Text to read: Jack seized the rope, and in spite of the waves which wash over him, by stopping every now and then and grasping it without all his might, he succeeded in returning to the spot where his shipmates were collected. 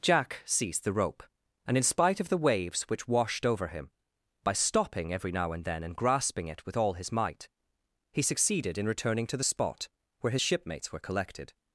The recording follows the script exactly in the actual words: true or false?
false